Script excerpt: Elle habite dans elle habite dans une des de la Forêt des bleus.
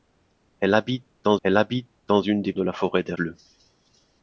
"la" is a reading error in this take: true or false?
false